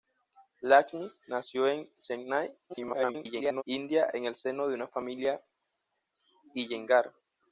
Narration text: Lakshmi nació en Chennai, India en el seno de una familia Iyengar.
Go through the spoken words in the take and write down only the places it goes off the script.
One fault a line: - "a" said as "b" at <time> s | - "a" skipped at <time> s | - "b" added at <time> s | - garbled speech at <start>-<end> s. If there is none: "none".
- garbled speech at 2.7-3.6 s